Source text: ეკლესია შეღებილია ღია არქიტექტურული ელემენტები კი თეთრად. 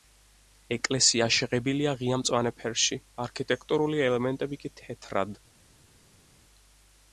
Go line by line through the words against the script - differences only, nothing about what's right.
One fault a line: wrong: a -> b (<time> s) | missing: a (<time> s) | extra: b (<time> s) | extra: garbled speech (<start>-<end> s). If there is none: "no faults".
extra: მწვანე ფერში (2.2 s)